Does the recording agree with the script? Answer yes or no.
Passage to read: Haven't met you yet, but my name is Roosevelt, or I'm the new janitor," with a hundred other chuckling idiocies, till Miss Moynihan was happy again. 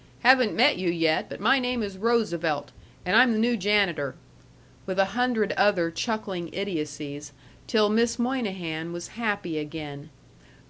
no